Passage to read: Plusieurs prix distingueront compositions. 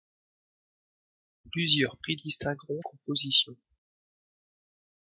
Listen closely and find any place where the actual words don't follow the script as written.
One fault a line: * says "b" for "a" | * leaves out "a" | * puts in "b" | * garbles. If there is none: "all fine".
all fine